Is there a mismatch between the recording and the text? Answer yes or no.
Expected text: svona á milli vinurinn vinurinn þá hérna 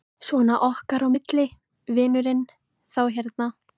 yes